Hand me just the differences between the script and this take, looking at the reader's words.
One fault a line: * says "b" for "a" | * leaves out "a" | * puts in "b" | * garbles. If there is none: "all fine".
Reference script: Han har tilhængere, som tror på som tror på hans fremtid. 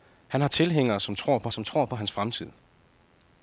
all fine